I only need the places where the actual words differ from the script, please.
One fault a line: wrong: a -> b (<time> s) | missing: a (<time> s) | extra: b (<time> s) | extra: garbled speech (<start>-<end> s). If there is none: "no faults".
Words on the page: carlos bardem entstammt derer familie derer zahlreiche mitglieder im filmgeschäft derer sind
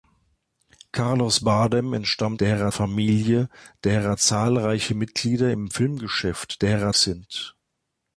no faults